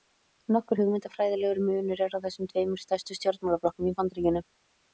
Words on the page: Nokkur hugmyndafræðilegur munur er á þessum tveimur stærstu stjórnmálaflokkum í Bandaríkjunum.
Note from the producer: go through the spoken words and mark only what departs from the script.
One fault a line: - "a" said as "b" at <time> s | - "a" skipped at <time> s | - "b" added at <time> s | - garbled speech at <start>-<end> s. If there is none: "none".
none